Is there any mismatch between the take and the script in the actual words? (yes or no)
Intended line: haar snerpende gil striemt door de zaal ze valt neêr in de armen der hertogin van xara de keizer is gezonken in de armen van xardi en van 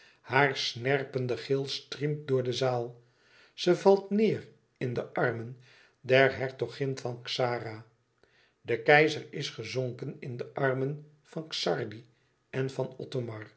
no